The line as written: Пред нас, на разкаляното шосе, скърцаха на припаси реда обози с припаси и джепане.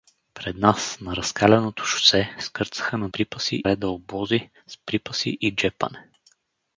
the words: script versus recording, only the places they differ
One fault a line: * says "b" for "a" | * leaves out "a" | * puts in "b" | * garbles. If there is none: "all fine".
all fine